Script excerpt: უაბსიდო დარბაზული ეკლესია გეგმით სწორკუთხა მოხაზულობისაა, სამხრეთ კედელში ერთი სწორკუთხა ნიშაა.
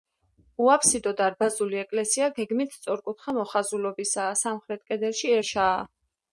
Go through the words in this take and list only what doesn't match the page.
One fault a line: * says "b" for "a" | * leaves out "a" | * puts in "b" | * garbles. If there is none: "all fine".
* leaves out "ერთი სწორკუთხა"